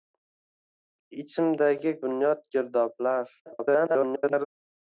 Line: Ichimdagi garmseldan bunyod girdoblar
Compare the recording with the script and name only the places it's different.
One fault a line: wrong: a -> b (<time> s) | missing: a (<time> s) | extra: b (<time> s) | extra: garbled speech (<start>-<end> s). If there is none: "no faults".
missing: garmseldan (1.9 s)
extra: garbled speech (3.5-4.5 s)